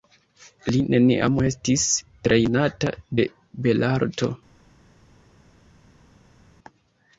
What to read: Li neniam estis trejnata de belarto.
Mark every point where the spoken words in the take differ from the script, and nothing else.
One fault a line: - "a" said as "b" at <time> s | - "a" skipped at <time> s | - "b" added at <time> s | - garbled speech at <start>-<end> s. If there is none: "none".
none